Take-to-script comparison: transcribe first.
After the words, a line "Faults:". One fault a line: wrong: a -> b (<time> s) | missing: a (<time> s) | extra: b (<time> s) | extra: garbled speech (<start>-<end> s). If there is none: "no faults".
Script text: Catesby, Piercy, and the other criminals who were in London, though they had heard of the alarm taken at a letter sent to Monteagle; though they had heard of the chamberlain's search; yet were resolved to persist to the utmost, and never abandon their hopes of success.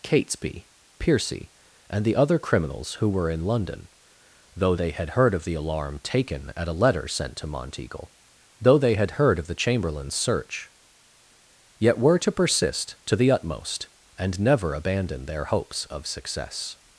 Catesby, Piercy, and the other criminals who were in London, though they had heard of the alarm taken at a letter sent to Monteagle; though they had heard of the chamberlain's search; yet were to persist to the utmost, and never abandon their hopes of success.
Faults:
missing: resolved (12.2 s)